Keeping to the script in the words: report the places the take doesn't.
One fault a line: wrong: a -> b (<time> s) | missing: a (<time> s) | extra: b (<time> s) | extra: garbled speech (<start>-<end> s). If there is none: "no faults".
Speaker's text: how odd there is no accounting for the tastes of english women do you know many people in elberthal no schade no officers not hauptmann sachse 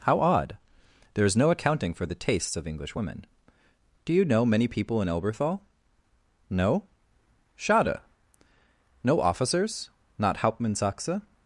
no faults